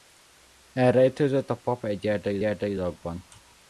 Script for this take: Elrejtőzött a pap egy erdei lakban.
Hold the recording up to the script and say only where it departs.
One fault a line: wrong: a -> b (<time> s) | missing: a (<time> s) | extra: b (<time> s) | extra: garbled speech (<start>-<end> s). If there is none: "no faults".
extra: erdei (2.4 s)